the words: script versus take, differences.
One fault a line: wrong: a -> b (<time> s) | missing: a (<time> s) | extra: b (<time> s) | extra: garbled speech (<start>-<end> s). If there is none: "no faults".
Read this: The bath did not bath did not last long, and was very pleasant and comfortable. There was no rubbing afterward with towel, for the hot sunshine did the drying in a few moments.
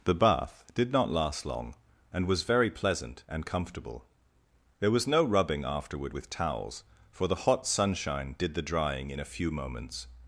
missing: bath did not (1.1 s)
wrong: towel -> towels (6.3 s)